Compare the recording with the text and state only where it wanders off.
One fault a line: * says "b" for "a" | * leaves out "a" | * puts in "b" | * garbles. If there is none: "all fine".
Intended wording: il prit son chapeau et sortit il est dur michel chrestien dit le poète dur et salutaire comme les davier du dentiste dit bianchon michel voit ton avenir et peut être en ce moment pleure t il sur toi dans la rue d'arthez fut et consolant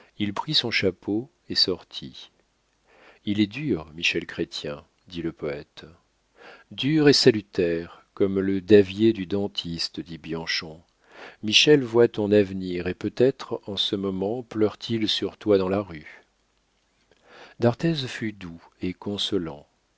* says "le" for "les"
* puts in "doux"